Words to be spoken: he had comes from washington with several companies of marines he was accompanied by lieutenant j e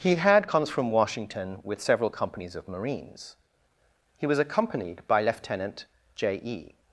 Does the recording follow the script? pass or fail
pass